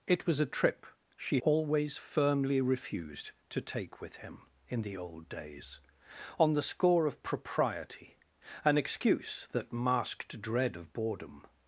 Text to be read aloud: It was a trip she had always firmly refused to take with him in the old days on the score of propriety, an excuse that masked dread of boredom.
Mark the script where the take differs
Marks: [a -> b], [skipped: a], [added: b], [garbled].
It was a trip she [skipped: had] always firmly refused to take with him in the old days on the score of propriety, an excuse that masked dread of boredom.